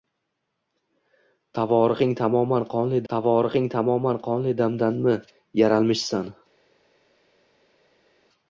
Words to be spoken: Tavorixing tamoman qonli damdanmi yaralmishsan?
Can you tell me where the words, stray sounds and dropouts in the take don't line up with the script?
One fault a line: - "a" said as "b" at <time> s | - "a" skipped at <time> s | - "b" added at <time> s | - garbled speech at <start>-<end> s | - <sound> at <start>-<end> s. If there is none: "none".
- "tavorixing tamoman qonli" added at 3.1 s